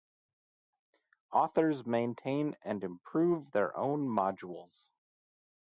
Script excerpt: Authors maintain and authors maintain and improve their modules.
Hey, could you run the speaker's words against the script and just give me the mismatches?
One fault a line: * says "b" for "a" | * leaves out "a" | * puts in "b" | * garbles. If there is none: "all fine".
* leaves out "authors maintain and"
* puts in "own"